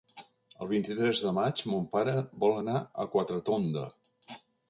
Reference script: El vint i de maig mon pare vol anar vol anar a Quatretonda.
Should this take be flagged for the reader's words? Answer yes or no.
yes